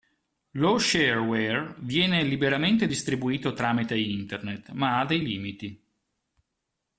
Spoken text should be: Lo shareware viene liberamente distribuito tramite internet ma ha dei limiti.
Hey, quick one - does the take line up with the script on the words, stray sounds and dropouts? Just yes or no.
yes